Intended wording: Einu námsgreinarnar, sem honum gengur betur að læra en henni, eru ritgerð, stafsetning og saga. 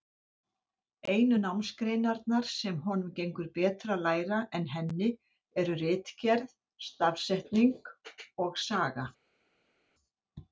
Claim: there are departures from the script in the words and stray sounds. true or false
false